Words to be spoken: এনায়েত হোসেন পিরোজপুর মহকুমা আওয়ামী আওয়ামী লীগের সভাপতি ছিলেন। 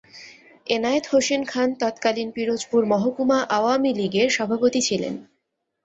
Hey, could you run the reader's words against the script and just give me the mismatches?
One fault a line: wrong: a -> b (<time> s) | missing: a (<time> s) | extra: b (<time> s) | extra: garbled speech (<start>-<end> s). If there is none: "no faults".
extra: খান তৎকালীন (1.4 s)
missing: আওয়ামী (3.9 s)